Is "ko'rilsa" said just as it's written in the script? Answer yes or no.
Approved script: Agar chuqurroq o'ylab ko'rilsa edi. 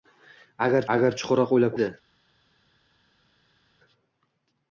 no